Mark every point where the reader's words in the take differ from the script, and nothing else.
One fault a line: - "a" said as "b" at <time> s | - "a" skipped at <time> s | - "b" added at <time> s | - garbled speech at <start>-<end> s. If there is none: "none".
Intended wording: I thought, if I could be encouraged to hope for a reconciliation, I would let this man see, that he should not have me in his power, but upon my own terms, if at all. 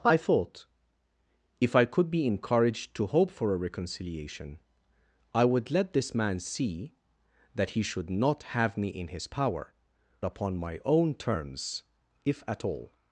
- "but" skipped at 9.7 s